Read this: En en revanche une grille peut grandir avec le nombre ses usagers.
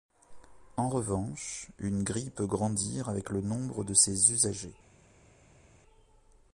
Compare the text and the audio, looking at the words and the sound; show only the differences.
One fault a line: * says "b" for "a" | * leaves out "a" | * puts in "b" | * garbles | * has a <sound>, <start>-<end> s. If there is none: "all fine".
* leaves out "en"
* puts in "de"